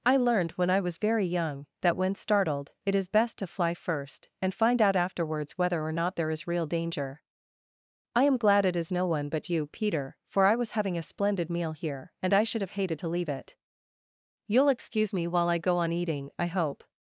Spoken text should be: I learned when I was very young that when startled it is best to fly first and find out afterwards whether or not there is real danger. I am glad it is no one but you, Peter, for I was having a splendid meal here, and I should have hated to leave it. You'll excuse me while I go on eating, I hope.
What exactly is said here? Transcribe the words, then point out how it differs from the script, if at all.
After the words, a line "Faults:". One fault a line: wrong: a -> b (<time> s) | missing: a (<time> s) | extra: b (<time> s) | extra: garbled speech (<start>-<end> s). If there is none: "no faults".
I learned when I was very young that when startled it is best to fly first and find out afterwards whether or not there is real danger. I am glad it is no one but you, Peter, for I was having a splendid meal here, and I should have hated to leave it. You'll excuse me while I go on eating, I hope.
Faults:
no faults